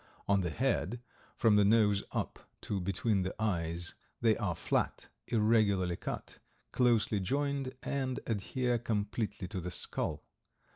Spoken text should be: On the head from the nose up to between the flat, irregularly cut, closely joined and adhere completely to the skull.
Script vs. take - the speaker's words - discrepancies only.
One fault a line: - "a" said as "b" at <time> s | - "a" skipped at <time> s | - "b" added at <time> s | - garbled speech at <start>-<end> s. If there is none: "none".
- "eyes they are" added at 3.4 s